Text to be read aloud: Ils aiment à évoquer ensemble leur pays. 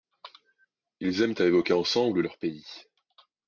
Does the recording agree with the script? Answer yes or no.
yes